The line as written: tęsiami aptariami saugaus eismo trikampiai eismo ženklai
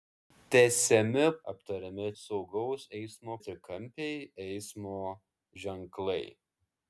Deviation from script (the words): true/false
false